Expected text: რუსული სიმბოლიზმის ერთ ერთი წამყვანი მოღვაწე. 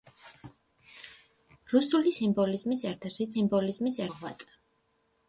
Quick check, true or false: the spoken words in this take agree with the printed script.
false